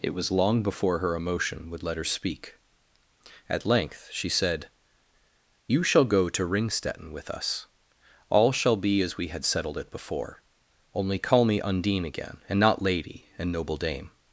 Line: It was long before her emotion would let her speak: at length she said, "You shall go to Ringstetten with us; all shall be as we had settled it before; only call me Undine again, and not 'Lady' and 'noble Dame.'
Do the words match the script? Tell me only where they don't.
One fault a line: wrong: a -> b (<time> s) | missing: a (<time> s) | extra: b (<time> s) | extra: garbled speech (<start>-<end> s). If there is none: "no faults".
no faults